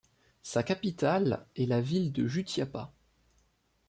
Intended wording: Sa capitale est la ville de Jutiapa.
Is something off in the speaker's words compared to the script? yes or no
no